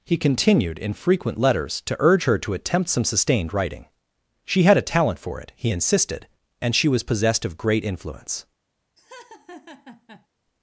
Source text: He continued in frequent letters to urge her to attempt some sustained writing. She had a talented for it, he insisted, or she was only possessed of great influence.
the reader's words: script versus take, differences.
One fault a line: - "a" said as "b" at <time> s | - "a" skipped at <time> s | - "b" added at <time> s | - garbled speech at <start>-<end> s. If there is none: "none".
- "talented" said as "talent" at 4.9 s
- "or" said as "and" at 6.6 s
- "only" skipped at 7.0 s